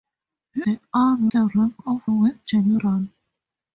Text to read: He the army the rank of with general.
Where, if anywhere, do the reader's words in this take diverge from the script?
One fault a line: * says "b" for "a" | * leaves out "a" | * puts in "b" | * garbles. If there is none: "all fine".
all fine